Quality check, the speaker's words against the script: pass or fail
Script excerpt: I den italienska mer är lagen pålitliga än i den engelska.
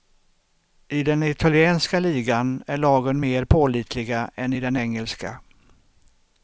fail